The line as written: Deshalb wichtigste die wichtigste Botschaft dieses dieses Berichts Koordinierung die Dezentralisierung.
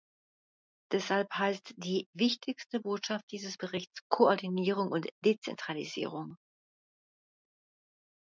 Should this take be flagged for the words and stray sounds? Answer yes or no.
yes